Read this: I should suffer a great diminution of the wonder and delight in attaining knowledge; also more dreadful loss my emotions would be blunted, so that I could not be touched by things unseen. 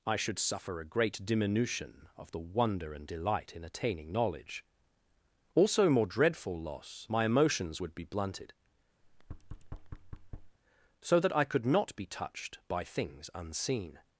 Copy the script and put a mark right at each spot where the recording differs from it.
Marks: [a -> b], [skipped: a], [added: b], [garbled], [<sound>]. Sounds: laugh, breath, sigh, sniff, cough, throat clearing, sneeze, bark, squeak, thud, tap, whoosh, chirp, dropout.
I should suffer a great diminution of the wonder and delight in attaining knowledge; also more dreadful loss my emotions would be blunted, [thud] so that I could not be touched by things unseen.